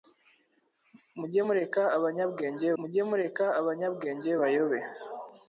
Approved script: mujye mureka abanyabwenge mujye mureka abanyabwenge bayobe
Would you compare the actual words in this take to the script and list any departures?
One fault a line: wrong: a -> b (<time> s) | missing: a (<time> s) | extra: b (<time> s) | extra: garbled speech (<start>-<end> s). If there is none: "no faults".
no faults